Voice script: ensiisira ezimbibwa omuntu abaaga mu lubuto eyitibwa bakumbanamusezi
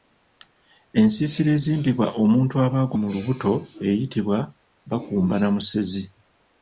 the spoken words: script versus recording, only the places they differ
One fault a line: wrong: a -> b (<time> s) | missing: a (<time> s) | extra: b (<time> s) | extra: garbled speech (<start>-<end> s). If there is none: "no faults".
no faults